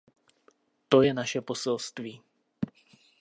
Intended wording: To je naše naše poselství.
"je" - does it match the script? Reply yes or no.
yes